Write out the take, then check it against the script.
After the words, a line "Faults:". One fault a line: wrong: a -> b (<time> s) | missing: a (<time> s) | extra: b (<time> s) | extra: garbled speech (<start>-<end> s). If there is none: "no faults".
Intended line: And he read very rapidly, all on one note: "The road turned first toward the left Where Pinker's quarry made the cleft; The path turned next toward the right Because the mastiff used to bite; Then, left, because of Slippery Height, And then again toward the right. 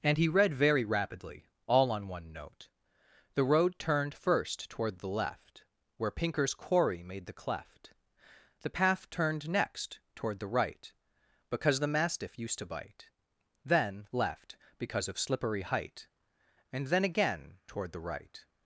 And he read very rapidly, all on one note: "The road turned first toward the left Where Pinker's quarry made the cleft; The path turned next toward the right Because the mastiff used to bite; Then, left, because of Slippery Height, And then again toward the right.
Faults:
no faults